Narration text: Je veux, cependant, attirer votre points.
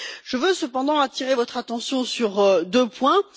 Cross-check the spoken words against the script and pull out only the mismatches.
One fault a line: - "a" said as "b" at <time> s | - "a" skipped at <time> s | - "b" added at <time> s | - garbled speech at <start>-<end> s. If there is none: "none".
- "attention sur deux" added at 1.6 s